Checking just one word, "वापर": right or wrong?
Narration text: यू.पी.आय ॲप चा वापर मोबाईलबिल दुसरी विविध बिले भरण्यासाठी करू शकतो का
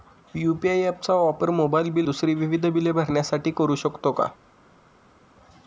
right